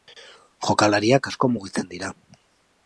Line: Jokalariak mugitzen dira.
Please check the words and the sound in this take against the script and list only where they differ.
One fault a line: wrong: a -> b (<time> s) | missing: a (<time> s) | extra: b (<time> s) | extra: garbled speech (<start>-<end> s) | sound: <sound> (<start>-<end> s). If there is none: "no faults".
extra: asko (1.3 s)